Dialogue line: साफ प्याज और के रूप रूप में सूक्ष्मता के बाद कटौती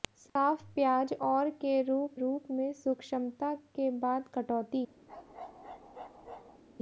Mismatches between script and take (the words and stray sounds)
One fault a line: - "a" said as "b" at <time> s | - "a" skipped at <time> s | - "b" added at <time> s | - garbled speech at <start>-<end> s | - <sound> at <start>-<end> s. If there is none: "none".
- bark at 5.1-6.6 s